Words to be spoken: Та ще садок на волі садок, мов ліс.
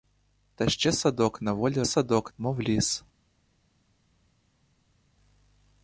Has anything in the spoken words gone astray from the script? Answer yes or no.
no